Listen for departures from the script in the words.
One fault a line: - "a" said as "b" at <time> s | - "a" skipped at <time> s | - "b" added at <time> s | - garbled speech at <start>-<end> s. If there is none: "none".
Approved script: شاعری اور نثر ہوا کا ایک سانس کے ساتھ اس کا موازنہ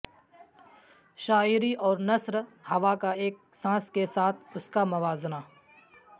none